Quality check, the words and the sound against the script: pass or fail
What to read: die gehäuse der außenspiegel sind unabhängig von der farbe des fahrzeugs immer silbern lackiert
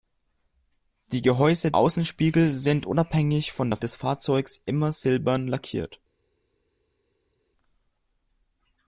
fail